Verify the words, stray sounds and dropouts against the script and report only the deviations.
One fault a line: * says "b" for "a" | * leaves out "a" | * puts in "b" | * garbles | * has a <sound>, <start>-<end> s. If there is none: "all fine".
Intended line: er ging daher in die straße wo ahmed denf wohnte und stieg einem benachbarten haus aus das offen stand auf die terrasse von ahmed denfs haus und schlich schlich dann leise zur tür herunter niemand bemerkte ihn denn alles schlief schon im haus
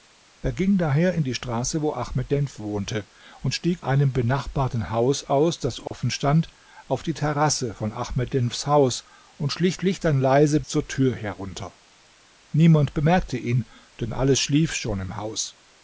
* has a dropout, 5.9-5.9 s